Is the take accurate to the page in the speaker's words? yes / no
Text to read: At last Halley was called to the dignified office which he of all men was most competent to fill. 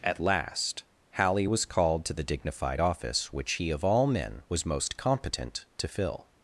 yes